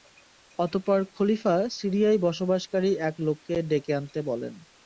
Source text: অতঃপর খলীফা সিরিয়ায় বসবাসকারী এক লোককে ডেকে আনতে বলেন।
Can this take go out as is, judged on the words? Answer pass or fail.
pass